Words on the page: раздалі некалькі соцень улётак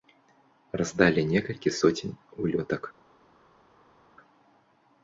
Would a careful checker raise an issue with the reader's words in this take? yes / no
no